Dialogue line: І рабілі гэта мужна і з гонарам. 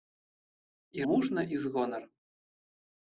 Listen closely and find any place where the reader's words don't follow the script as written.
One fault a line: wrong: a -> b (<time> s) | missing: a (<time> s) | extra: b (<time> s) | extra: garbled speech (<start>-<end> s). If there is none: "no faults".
missing: рабілі гэта (1.1 s)